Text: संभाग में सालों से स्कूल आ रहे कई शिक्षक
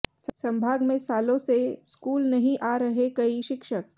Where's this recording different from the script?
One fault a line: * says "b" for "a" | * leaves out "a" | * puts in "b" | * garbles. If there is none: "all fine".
* puts in "नहीं"